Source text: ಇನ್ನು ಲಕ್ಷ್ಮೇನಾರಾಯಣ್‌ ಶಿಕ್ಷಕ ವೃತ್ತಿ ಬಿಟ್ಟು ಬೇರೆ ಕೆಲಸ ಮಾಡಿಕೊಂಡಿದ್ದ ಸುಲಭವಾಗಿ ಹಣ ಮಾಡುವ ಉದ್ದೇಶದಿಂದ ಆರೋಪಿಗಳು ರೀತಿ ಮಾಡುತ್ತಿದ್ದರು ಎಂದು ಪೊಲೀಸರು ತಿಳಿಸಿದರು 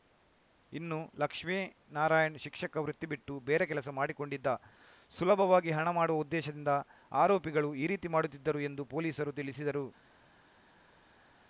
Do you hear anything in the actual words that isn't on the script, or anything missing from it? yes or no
yes